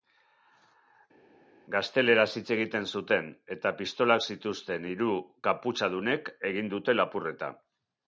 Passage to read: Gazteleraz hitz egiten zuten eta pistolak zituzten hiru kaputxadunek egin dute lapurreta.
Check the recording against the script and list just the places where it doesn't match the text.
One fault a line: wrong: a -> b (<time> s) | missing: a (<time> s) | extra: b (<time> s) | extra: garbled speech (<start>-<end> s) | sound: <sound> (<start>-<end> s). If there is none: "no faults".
no faults